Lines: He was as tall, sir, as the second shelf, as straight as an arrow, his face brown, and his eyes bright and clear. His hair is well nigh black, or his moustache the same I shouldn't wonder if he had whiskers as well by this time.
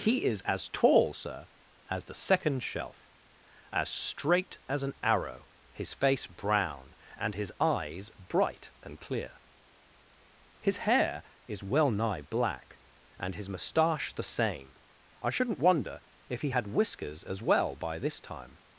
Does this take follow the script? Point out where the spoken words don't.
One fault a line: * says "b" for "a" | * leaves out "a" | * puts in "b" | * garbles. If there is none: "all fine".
* says "is" for "was"
* says "and" for "or"